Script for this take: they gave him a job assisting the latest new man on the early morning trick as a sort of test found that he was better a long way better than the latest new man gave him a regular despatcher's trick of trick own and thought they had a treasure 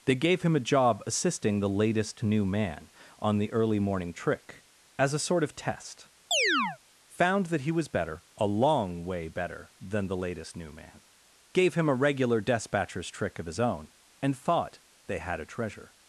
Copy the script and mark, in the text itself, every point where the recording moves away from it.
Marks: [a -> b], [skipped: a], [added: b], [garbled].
they gave him a job assisting the latest new man on the early morning trick as a sort of test found that he was better a long way better than the latest new man gave him a regular despatcher's trick of [trick -> his] own and thought they had a treasure